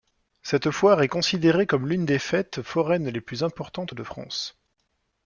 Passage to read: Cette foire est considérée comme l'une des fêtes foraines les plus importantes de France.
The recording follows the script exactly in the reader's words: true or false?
true